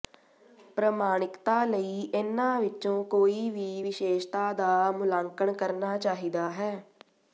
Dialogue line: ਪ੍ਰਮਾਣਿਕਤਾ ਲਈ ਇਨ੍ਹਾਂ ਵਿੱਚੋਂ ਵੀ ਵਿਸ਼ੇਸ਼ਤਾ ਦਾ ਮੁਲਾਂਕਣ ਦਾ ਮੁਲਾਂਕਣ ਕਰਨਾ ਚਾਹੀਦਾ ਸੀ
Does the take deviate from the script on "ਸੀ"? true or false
true